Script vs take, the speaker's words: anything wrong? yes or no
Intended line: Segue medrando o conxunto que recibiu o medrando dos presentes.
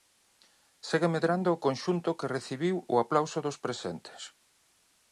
yes